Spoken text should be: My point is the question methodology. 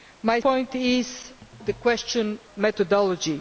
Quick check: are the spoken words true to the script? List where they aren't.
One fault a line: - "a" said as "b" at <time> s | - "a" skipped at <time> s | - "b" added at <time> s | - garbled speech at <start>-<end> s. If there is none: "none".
none